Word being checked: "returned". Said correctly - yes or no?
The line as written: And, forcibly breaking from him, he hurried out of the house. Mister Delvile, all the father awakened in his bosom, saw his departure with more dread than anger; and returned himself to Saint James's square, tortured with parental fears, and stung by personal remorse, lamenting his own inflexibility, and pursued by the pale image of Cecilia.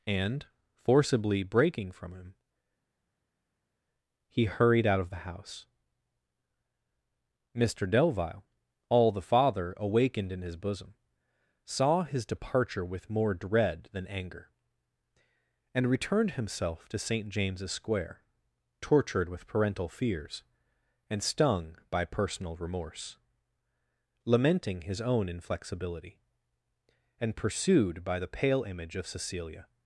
yes